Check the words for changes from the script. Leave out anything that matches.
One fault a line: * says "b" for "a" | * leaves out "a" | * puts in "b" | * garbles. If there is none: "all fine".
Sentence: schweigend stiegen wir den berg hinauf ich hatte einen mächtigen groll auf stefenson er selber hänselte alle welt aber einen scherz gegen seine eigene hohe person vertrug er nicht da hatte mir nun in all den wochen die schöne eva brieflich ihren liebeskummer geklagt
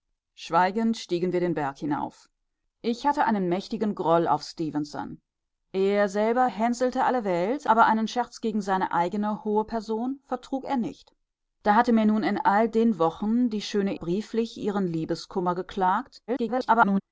* leaves out "eva"
* garbles